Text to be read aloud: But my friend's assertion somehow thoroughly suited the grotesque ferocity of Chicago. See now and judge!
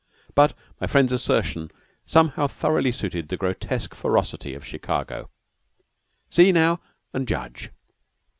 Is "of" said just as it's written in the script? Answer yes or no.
yes